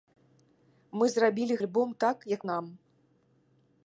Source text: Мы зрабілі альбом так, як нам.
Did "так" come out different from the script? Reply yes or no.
no